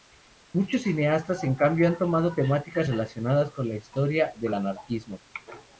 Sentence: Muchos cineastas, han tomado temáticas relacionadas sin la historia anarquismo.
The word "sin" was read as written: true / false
false